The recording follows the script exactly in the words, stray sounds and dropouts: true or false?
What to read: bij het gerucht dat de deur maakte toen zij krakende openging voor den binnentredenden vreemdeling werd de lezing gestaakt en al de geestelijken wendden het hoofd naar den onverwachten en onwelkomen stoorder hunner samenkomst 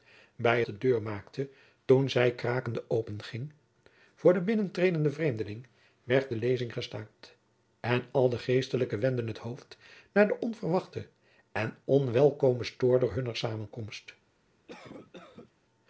false